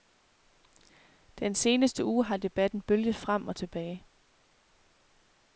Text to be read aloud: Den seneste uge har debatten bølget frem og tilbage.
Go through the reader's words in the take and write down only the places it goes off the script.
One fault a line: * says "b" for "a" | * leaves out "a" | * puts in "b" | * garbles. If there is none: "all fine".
all fine